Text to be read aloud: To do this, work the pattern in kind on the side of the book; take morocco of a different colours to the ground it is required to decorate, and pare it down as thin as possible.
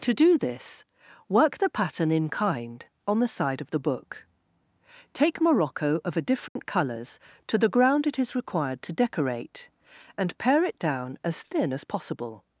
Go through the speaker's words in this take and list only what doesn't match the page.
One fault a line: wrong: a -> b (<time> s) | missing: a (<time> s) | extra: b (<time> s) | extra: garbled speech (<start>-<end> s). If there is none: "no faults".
no faults